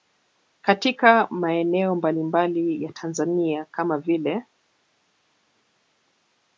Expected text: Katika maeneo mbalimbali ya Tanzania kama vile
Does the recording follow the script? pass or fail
pass